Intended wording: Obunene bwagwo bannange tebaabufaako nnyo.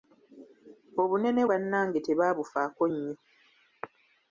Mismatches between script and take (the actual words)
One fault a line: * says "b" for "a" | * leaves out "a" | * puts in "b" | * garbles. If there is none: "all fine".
* leaves out "bwagwo"